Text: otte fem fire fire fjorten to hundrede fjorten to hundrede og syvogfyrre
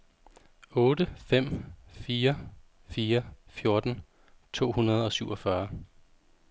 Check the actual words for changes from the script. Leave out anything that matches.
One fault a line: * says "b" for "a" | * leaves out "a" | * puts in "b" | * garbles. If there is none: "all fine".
* leaves out "fjorten to hundrede"